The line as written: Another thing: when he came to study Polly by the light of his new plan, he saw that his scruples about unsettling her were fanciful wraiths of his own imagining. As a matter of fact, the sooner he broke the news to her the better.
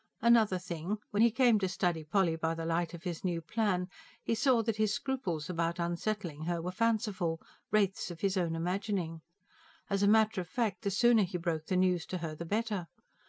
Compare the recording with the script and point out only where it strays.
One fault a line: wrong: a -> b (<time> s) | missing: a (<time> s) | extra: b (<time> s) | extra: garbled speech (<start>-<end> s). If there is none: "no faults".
no faults